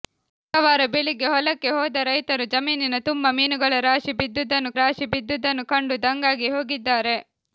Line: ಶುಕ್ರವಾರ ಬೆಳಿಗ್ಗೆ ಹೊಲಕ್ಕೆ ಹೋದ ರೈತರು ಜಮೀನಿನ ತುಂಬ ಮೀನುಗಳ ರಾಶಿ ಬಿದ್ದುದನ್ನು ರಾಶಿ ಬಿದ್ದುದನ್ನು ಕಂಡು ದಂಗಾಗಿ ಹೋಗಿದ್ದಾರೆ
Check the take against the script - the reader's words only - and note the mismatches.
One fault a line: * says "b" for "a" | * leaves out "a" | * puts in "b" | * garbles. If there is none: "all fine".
all fine